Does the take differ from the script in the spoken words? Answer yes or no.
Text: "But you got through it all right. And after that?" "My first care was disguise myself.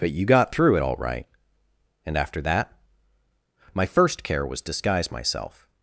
no